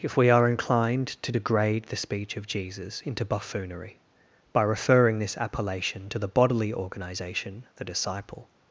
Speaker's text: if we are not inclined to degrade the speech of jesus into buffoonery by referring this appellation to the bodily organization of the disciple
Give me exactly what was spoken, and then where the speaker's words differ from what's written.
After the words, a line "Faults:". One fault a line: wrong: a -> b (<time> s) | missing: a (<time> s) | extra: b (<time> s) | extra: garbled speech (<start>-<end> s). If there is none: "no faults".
if we are inclined to degrade the speech of jesus into buffoonery by referring this appellation to the bodily organization the disciple
Faults:
missing: not (0.5 s)
missing: of (7.6 s)